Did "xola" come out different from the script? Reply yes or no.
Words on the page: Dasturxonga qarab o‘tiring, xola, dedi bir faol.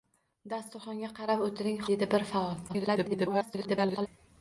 yes